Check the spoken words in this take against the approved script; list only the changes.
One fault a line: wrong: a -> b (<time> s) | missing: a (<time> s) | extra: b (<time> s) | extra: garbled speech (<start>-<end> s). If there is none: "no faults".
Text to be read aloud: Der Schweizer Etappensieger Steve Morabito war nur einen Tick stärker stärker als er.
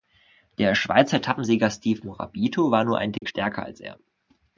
missing: stärker (3.6 s)